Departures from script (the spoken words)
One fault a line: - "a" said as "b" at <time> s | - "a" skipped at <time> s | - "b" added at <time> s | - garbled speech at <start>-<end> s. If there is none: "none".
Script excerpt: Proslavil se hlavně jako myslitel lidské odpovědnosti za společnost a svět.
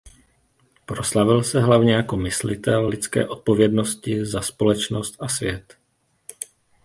none